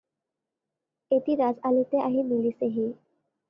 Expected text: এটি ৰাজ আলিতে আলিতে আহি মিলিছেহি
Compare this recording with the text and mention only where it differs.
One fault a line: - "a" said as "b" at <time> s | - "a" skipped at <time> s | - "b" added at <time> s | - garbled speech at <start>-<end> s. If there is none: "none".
- "আলিতে" skipped at 2.0 s